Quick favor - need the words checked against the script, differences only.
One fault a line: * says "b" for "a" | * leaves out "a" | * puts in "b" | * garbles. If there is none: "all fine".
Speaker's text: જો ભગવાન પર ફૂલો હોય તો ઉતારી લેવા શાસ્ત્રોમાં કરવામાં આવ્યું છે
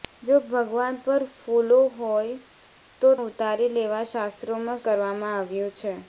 all fine